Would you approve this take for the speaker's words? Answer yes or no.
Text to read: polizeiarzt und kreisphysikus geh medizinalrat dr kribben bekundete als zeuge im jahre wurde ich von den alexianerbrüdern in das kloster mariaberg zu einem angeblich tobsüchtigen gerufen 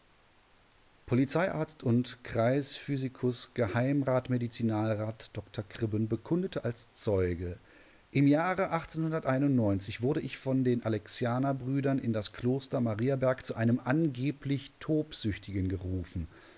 yes